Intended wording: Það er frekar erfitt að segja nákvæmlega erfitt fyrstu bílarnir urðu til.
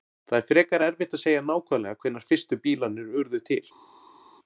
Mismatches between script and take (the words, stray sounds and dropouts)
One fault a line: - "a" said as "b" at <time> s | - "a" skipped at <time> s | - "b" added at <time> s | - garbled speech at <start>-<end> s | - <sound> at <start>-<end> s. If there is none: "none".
- "erfitt" said as "hvenær" at 2.0 s